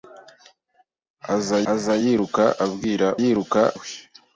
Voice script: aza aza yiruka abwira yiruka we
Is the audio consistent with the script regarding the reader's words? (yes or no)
yes